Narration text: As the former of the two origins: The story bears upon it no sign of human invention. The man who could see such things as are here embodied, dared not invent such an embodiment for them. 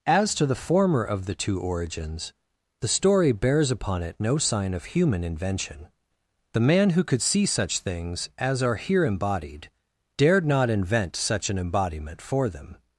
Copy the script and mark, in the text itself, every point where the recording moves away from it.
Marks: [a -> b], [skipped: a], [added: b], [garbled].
As [added: to] the former of the two origins: The story bears upon it no sign of human invention. The man who could see such things as are here embodied, dared not invent such an embodiment for them.